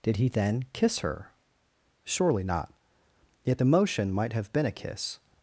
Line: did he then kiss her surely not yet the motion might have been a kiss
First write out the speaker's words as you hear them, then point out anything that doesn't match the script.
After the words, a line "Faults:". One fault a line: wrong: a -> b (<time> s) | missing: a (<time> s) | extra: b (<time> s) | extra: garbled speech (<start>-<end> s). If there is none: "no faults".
did he then kiss her surely not yet the motion might have been a kiss
Faults:
no faults